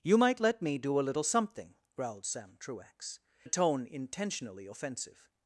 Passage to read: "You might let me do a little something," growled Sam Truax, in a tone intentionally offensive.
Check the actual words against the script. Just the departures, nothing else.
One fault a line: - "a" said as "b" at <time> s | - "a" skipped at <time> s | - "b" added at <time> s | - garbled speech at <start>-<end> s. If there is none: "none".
- "in" skipped at 3.2 s